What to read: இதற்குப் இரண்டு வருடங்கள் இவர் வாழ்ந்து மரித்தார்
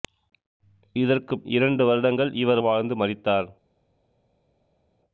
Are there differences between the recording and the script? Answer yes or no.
no